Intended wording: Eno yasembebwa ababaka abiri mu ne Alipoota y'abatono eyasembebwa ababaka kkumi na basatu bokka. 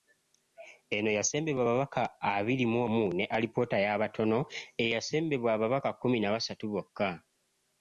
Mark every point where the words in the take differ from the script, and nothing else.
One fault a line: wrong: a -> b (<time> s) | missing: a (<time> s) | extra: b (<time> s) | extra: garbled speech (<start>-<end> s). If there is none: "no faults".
extra: omu (2.8 s)